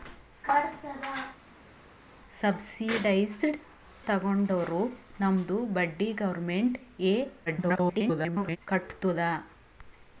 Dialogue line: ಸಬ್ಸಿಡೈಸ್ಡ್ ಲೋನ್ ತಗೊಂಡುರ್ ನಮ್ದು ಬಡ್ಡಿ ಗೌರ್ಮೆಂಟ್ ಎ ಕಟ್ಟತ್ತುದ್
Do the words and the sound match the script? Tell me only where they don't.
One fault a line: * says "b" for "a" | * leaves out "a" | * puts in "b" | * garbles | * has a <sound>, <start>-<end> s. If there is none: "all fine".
* leaves out "ಲೋನ್"
* garbles